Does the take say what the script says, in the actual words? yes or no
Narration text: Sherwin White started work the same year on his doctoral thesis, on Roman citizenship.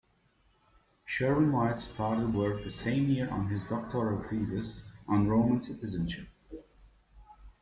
yes